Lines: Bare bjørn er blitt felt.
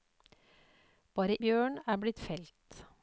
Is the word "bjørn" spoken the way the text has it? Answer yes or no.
yes